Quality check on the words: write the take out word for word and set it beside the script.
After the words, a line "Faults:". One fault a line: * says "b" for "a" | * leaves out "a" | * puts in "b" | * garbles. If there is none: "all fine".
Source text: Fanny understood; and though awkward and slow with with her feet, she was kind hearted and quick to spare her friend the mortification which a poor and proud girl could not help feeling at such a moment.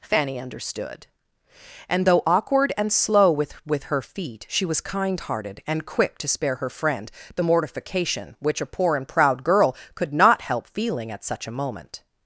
Fanny understood; and though awkward and slow with with her feet, she was kind hearted and quick to spare her friend the mortification which a poor and proud girl could not help feeling at such a moment.
Faults:
all fine